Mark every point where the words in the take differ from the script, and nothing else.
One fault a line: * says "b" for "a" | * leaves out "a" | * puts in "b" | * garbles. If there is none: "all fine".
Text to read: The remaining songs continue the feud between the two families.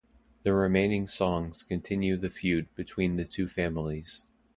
all fine